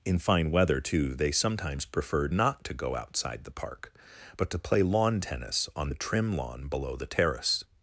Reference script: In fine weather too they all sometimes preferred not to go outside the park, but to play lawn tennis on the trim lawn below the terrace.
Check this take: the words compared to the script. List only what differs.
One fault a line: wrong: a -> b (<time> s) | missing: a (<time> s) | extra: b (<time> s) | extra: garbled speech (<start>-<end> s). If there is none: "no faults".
missing: all (1.3 s)